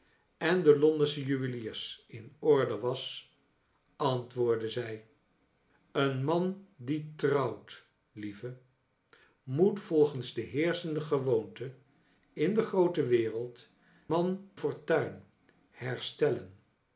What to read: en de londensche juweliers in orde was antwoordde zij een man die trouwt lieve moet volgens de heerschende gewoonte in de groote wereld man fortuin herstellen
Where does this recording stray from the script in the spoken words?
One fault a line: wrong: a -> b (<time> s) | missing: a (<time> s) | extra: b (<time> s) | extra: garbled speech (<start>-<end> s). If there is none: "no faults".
no faults